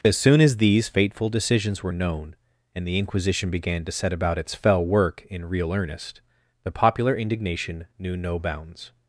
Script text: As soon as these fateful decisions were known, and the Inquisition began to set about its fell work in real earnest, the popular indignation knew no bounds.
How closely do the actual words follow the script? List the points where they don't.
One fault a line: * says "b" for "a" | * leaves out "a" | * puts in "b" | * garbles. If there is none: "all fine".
all fine